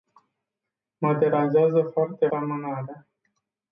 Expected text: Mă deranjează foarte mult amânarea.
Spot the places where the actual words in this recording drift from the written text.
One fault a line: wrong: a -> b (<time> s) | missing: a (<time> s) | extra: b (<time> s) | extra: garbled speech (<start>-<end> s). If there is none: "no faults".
missing: mult (2.3 s)